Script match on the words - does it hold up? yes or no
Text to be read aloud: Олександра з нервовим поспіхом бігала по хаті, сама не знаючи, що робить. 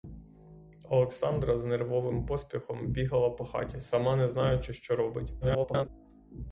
no